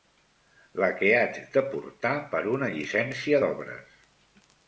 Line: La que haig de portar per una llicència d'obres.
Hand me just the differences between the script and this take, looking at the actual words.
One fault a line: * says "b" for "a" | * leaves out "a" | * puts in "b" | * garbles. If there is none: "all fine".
all fine